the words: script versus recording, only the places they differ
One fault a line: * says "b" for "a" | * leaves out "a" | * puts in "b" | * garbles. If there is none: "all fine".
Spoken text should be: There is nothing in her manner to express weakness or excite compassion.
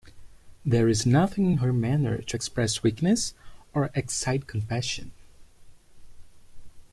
all fine